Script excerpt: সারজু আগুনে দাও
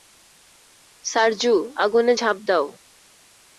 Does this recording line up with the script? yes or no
no